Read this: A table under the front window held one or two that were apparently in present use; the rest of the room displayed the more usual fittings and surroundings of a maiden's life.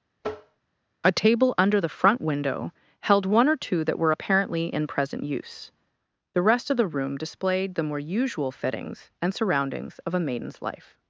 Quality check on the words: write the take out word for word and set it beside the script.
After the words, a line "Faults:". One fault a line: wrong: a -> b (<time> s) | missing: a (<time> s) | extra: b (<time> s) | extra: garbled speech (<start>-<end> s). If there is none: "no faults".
A table under the front window held one or two that were apparently in present use; the rest of the room displayed the more usual fittings and surroundings of a maiden's life.
Faults:
no faults